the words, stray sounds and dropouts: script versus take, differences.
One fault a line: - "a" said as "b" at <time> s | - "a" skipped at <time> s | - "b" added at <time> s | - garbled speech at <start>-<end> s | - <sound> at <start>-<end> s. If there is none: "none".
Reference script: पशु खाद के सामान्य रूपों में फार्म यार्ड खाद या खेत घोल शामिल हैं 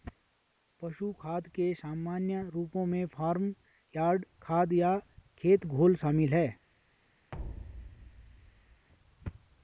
- thud at 7.3-8.9 s